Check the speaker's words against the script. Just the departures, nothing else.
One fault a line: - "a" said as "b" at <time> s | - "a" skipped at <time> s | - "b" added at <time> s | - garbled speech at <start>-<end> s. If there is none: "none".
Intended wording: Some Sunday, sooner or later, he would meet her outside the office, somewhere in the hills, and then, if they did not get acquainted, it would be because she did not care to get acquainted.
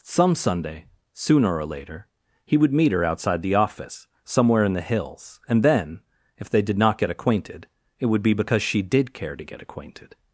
- "not" skipped at 9.1 s